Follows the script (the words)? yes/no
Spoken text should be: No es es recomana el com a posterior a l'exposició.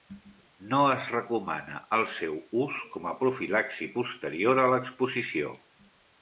no